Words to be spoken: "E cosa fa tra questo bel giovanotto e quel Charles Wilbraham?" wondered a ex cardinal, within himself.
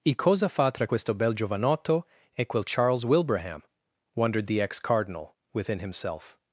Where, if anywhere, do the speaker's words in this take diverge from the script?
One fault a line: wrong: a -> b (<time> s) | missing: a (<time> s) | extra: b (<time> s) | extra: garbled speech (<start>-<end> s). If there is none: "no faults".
wrong: a -> the (4.5 s)